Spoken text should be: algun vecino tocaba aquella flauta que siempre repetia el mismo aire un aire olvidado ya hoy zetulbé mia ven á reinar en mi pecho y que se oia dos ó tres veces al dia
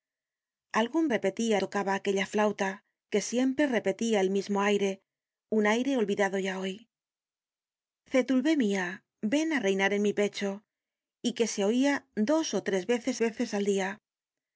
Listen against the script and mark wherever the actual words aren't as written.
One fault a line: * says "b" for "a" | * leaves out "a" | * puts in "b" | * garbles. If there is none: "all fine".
* says "repetia" for "vecino"
* puts in "veces"